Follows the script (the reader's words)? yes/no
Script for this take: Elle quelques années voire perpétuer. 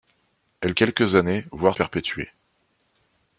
yes